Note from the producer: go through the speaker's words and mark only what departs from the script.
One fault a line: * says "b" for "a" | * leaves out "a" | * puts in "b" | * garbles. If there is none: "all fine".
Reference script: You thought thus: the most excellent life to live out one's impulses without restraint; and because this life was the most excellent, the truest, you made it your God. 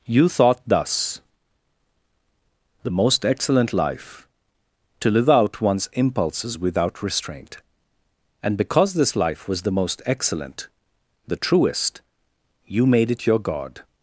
all fine